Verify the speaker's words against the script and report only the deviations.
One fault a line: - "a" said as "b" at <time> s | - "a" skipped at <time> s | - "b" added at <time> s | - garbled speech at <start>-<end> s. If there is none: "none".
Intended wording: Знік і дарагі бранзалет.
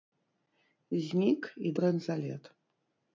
- "дарагі" skipped at 1.7 s